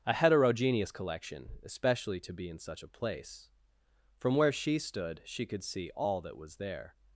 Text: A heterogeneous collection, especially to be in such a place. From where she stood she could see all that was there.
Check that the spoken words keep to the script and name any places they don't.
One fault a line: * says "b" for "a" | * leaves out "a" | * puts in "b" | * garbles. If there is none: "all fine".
all fine